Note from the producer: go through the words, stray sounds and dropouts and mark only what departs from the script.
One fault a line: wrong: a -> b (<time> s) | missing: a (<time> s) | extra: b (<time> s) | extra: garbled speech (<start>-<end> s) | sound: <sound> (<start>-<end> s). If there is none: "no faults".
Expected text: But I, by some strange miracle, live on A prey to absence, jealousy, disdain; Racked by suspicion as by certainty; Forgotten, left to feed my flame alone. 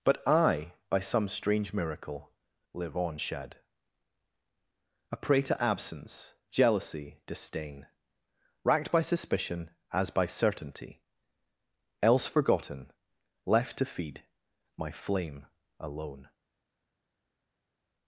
extra: shed (3.2 s)
extra: else (12.0 s)